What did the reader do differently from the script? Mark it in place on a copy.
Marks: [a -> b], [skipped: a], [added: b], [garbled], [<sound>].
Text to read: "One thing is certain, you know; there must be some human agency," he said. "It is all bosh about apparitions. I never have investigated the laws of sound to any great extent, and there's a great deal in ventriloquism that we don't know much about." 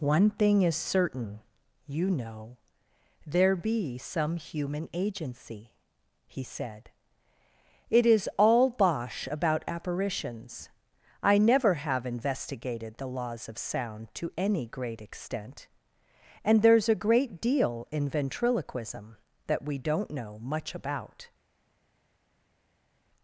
"One thing is certain, you know; there [skipped: must] be some human agency," he said. "It is all bosh about apparitions. I never have investigated the laws of sound to any great extent, and there's a great deal in ventriloquism that we don't know much about."